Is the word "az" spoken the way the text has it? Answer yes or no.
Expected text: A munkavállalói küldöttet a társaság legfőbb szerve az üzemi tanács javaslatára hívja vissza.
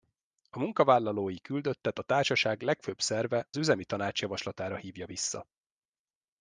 no